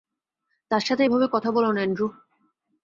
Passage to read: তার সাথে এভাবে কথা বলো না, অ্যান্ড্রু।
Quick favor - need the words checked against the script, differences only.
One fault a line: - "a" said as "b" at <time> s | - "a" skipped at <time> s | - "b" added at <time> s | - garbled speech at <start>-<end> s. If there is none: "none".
none